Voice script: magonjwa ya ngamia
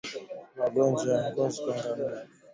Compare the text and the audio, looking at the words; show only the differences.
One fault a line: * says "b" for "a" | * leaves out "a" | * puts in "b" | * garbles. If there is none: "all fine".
* puts in "ngozi kwa"